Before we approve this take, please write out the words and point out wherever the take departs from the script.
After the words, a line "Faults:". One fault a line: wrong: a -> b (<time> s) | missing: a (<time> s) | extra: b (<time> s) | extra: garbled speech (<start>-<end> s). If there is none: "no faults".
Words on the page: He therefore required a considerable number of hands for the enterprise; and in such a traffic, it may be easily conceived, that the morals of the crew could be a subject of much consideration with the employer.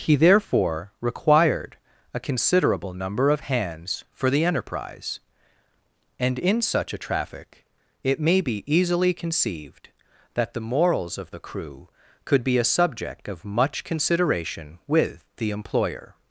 He therefore required a considerable number of hands for the enterprise; and in such a traffic, it may be easily conceived, that the morals of the crew could be a subject of much consideration with the employer.
Faults:
no faults